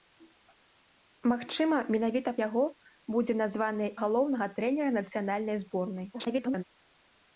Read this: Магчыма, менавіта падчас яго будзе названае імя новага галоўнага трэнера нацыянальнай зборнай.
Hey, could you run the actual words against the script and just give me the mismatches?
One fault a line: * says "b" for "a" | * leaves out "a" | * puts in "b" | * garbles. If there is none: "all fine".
* leaves out "падчас"
* leaves out "імя новага"
* garbles